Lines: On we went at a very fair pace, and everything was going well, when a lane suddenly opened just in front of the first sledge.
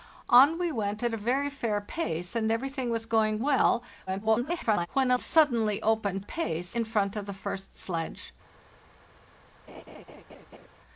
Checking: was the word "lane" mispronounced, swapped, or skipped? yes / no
yes